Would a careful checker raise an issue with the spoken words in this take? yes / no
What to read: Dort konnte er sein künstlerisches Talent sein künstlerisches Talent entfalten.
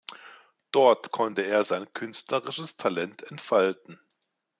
yes